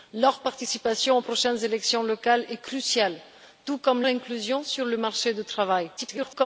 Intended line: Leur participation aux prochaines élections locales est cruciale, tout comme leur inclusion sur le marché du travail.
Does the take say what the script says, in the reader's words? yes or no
no